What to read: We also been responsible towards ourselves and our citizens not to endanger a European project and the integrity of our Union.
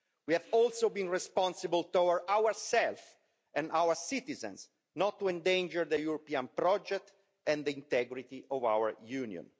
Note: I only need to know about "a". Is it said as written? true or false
false